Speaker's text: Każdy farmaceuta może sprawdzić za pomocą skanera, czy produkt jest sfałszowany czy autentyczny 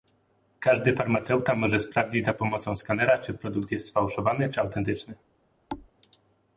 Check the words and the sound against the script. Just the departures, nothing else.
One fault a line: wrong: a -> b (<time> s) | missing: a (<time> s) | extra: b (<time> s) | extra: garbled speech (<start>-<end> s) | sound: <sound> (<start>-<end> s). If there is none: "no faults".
sound: thud (5.7-5.9 s)